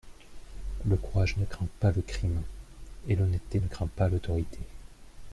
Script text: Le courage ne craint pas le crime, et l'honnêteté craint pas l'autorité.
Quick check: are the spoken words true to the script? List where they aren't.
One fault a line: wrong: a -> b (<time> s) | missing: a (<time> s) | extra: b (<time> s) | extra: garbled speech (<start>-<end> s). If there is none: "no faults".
extra: ne (3.6 s)